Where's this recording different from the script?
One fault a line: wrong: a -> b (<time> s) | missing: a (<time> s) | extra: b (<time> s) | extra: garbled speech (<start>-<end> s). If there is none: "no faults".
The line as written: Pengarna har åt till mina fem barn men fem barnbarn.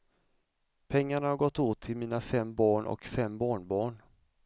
extra: gått (1.4 s)
wrong: men -> och (2.9 s)